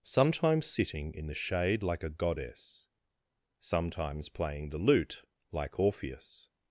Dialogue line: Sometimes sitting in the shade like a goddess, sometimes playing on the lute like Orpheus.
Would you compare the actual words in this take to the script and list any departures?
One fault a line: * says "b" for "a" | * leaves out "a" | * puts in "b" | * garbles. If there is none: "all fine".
* leaves out "on"